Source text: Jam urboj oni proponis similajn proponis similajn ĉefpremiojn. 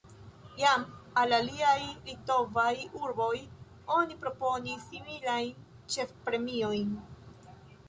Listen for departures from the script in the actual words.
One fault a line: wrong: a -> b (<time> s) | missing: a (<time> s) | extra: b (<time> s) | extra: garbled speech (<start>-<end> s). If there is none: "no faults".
extra: al aliaj litovaj (1.2 s)
missing: proponis similajn (5.7 s)